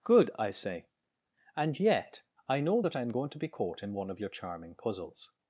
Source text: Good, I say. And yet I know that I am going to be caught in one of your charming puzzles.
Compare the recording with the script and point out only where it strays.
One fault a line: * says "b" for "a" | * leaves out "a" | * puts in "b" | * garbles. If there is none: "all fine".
all fine